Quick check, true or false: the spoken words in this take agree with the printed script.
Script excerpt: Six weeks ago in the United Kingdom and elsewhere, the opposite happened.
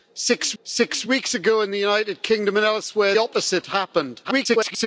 false